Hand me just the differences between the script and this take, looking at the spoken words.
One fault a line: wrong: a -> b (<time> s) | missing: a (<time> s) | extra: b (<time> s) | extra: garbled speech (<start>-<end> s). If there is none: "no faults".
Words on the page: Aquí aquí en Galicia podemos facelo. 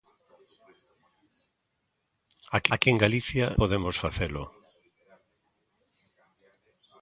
no faults